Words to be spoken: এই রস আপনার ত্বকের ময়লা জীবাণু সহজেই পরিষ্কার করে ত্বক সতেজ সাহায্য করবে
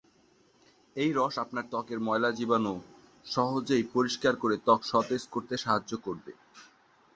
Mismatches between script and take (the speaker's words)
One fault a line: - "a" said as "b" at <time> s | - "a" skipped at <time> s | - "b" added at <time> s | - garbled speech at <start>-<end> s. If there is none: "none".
- "করতে" added at 5.3 s